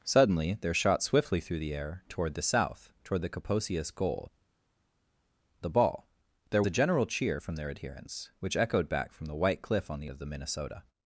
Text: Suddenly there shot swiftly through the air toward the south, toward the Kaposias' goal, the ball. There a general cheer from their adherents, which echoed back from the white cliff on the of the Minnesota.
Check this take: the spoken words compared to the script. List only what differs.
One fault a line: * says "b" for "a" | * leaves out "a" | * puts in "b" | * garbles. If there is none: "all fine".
all fine